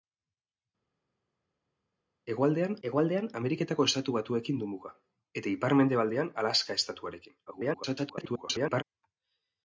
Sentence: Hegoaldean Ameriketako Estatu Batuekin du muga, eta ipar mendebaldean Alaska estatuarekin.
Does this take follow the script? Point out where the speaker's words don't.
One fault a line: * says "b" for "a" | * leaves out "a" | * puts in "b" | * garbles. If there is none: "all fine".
* puts in "hegoaldean"
* garbles